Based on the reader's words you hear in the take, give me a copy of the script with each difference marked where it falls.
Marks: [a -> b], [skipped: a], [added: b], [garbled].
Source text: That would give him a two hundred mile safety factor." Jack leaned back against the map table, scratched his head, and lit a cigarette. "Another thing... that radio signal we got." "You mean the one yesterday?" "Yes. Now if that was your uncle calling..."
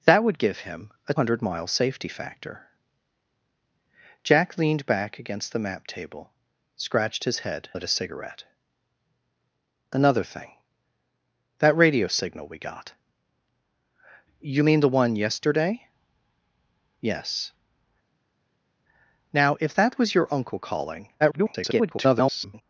That would give him a [skipped: two] hundred mile safety factor." Jack leaned back against the map table, scratched his head, [skipped: and] lit a cigarette. "Another thing... that radio signal we got." "You mean the one yesterday?" "Yes. Now if that was your uncle calling..." [garbled]